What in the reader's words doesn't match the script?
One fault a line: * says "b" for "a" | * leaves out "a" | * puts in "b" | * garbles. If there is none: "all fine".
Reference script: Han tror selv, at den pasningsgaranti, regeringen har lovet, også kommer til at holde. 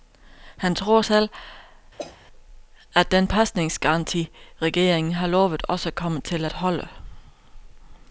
all fine